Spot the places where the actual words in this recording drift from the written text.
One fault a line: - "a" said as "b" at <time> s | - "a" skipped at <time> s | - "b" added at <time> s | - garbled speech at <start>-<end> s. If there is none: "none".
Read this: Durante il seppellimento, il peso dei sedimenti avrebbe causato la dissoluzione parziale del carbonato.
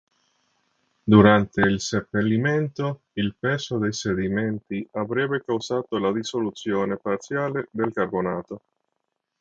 none